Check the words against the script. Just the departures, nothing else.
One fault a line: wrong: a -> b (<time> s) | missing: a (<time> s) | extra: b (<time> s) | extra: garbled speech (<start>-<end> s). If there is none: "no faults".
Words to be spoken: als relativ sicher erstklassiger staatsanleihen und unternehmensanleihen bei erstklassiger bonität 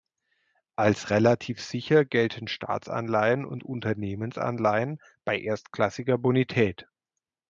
wrong: erstklassiger -> gelten (2.0 s)